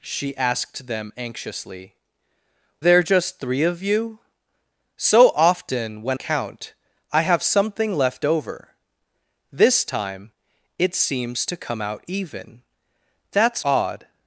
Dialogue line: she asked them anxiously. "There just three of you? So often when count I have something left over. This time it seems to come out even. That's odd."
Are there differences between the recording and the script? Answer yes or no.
no